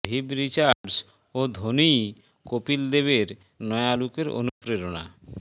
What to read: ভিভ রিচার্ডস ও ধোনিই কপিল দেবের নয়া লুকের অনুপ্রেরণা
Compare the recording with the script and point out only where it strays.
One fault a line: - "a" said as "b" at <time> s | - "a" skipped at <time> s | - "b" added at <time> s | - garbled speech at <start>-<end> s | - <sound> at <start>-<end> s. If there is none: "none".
- dropout at 0.7-0.8 s
- dropout at 4.5-4.6 s